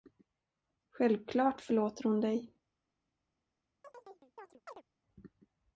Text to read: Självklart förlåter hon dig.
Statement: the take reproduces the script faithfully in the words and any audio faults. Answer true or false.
false